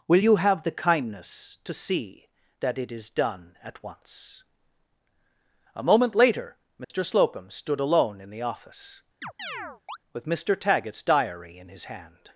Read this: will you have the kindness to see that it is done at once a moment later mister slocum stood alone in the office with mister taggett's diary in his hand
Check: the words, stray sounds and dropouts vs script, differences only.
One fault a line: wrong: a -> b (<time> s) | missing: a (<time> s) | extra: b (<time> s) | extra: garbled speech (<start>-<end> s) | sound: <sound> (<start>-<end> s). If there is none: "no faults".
sound: dropout (6.8-6.9 s)
sound: chirp (9.2-10.0 s)